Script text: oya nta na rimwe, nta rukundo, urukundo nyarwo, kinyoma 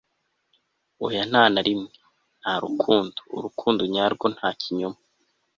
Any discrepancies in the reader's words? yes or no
yes